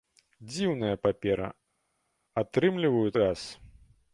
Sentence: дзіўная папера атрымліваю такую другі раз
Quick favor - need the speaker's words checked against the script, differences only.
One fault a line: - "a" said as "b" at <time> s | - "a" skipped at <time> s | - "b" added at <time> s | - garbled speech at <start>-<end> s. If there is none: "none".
- "такую другі" skipped at 3.1 s